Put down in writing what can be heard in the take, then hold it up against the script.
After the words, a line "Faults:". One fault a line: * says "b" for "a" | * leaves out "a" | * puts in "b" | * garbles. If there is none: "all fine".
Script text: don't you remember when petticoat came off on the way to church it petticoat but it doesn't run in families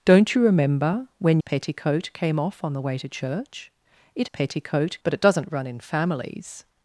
don't you remember when petticoat came off on the way to church it petticoat but it doesn't run in families
Faults:
all fine